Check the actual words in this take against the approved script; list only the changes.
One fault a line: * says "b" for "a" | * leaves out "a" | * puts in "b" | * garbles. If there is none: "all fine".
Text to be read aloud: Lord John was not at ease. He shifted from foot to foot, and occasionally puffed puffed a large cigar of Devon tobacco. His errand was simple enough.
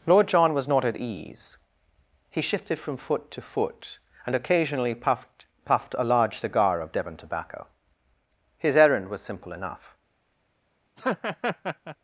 all fine